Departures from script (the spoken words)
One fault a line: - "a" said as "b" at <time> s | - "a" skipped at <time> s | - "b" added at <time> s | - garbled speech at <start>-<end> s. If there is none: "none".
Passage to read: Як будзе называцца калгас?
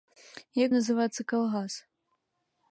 - "будзе" skipped at 0.7 s